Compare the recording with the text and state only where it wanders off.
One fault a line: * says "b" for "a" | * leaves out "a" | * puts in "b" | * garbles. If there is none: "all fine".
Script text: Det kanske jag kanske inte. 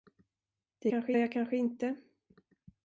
all fine